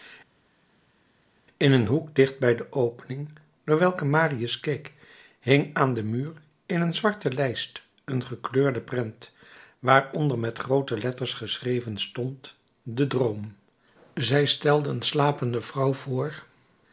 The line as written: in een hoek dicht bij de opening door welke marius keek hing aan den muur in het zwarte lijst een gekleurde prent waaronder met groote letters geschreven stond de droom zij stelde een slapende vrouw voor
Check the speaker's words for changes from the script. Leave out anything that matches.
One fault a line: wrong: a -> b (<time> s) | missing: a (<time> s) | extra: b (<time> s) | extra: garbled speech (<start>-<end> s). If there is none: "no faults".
wrong: het -> een (6.8 s)